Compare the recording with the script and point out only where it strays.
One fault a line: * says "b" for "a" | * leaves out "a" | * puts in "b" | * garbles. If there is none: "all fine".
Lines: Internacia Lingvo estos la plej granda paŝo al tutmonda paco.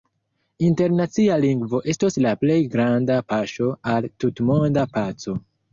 all fine